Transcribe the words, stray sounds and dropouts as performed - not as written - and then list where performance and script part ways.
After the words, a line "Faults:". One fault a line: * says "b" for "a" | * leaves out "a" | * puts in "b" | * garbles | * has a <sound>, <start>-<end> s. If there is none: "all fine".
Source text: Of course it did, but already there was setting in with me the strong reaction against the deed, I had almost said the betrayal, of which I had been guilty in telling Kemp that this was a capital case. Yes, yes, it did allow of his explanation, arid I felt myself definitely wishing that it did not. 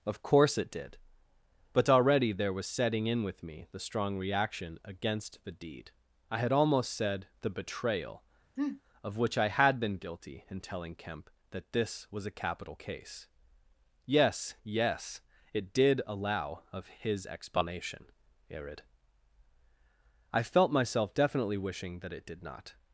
Of course it did, but already there was setting in with me the strong reaction against the deed, I had almost said the betrayal, of which I had been guilty in telling Kemp that this was a capital case. Yes, yes, it did allow of his explanation, arid I felt myself definitely wishing that it did not.
Faults:
* has a sniff, 8.6-8.8 s